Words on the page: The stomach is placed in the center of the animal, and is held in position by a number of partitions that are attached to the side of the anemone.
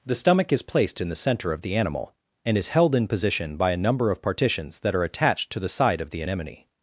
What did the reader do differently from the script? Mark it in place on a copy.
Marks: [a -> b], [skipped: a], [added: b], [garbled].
The stomach is placed in the center of the animal, and is held in position by a number of partitions that are attached to the side of the anemone.